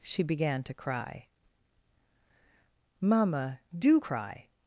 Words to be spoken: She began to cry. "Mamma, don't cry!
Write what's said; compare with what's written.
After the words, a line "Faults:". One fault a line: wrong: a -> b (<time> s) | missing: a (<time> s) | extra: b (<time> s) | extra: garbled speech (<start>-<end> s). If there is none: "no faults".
She began to cry. "Mamma, do cry!
Faults:
wrong: don't -> do (3.8 s)